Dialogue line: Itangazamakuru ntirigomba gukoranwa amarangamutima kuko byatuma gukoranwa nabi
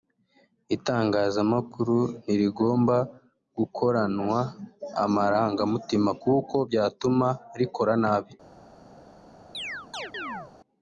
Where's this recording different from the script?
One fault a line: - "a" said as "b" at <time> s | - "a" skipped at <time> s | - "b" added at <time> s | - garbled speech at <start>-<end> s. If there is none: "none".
- "gukoranwa" said as "rikora" at 7.6 s